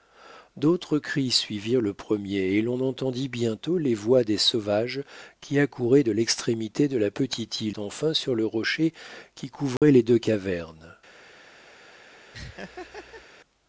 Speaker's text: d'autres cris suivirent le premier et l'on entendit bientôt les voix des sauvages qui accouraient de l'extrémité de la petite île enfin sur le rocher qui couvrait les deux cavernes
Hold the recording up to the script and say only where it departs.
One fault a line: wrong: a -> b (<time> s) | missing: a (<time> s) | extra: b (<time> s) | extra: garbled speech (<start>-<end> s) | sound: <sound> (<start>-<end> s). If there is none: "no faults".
sound: dropout (9.8-9.8 s)
sound: laugh (12.3-13.3 s)